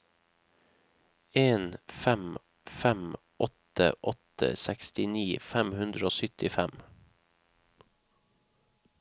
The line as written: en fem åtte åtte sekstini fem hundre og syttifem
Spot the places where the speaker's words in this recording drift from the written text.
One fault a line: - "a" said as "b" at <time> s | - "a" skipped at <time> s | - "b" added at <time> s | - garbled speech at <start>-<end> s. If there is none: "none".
- "fem" added at 2.6 s